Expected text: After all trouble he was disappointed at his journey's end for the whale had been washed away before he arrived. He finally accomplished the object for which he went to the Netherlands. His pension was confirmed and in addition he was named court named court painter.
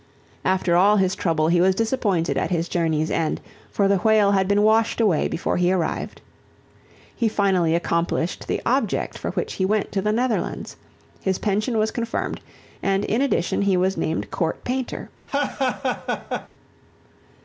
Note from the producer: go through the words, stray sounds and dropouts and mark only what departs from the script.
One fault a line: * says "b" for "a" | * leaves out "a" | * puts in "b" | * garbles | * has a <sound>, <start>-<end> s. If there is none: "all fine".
* puts in "his"
* leaves out "named court"
* has a laugh, 15.3-16.5 s